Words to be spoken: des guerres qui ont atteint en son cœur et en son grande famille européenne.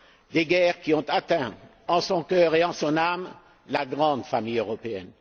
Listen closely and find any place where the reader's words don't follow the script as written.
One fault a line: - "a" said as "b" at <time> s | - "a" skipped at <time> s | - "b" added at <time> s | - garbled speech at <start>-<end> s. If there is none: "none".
- "âme la" added at 3.0 s